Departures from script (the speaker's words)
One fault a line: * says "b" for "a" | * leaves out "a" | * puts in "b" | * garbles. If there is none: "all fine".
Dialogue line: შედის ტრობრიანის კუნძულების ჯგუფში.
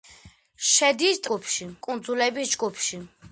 * says "ჯგუფში" for "ტრობრიანის"